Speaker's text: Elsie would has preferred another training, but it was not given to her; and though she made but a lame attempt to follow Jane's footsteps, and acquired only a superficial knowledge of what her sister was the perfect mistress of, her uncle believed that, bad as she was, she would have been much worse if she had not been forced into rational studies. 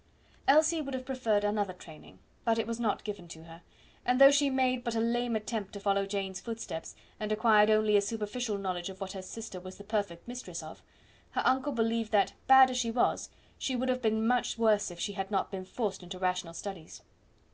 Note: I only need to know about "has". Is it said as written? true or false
false